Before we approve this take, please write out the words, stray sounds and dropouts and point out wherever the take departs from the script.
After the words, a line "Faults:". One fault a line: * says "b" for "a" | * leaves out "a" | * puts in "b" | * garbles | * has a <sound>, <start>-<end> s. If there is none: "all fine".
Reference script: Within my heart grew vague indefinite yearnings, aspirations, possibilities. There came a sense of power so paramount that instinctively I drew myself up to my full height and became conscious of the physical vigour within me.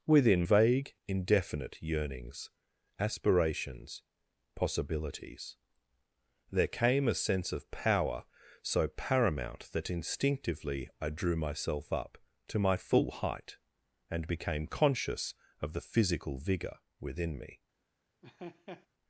Within vague indefinite yearnings, aspirations, possibilities. There came a sense of power so paramount that instinctively I drew myself up to my full height and became conscious of the physical vigour within me.
Faults:
* leaves out "my heart grew"
* has a laugh, 18.2-18.9 s